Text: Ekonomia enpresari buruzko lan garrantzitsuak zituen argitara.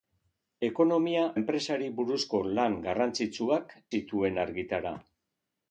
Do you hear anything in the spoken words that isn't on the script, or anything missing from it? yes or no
no